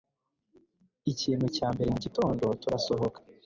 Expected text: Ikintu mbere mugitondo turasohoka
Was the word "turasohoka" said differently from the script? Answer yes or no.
no